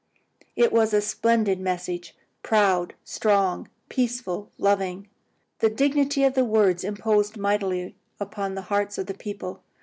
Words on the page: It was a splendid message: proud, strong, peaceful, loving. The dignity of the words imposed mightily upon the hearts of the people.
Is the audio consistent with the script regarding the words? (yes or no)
yes